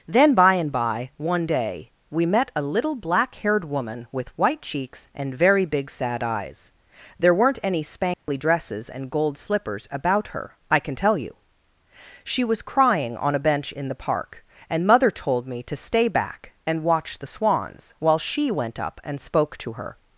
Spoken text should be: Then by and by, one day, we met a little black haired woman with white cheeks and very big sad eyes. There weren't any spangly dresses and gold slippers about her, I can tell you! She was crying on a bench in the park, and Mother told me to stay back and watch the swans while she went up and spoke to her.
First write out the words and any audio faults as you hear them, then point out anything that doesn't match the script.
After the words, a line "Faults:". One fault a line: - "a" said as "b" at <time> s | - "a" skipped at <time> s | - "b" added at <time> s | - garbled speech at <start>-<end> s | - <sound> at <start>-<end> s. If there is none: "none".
Then by and by, one day, we met a little black haired woman with white cheeks and very big sad eyes. There weren't any spangly dresses and gold slippers about her, I can tell you! She was crying on a bench in the park, and Mother told me to stay back and watch the swans while she went up and spoke to her.
Faults:
- dropout at 8.1-8.3 s